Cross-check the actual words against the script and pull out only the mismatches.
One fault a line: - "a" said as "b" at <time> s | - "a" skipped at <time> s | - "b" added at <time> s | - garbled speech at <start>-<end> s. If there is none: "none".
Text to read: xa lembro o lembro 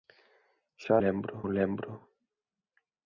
none